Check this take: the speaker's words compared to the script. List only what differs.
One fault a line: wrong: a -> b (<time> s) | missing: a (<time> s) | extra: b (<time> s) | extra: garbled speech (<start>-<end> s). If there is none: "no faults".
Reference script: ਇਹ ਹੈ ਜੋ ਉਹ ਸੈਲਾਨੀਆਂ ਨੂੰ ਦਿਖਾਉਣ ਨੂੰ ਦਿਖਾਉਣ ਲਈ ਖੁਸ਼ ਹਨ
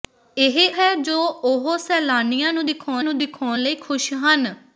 no faults